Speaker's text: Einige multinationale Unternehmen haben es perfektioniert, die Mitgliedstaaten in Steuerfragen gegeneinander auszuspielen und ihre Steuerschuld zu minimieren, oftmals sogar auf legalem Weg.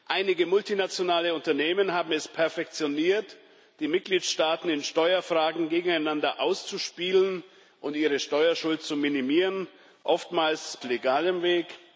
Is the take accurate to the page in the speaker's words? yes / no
no